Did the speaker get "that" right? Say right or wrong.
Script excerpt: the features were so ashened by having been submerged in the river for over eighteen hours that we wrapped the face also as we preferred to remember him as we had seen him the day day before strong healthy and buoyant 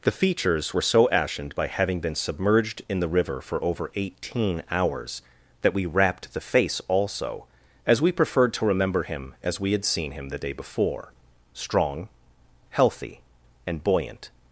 right